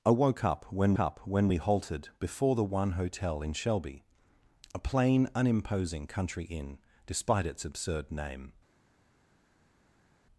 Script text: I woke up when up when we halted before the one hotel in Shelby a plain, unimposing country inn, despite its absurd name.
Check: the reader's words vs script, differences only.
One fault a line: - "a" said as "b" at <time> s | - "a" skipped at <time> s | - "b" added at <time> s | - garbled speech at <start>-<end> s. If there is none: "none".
none